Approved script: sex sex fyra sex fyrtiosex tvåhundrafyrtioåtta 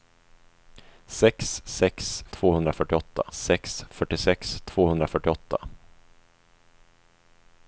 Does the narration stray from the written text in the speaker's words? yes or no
yes